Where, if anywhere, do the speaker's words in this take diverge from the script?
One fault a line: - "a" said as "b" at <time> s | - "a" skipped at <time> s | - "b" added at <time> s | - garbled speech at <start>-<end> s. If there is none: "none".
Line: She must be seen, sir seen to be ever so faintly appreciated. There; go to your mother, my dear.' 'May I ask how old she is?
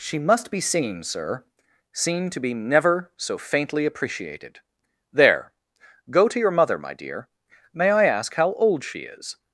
- "ever" said as "never" at 2.5 s